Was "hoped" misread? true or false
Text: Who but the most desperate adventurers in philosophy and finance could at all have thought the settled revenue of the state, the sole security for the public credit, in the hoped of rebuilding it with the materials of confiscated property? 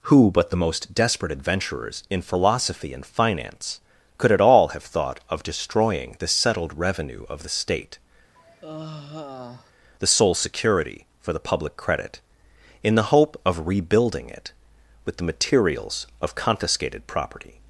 true